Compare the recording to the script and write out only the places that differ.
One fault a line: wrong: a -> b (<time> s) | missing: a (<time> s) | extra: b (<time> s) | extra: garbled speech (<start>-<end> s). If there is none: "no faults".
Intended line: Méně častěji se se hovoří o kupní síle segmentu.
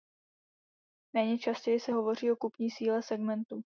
missing: se (1.9 s)